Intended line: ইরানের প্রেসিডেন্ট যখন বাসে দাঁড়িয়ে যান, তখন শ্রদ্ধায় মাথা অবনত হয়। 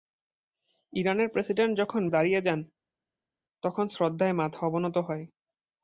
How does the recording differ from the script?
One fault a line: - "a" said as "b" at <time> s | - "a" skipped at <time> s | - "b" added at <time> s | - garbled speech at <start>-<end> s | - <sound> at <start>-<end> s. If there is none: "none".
- "বাসে" skipped at 2.0 s